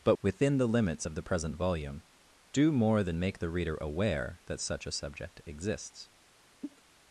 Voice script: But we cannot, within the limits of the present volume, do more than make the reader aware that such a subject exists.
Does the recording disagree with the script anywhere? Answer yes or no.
yes